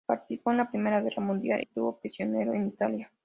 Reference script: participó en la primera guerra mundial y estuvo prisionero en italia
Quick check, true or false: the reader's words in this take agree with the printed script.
false